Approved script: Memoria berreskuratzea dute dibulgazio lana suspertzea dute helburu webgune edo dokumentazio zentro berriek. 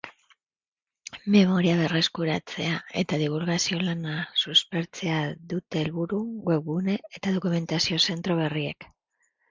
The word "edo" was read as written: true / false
false